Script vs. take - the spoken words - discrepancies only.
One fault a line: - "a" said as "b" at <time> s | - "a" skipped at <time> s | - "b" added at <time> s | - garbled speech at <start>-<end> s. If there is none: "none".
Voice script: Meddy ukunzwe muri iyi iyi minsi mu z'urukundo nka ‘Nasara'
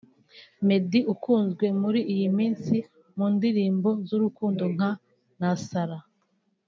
- "iyi" skipped at 2.3 s
- "ndirimbo" added at 3.4 s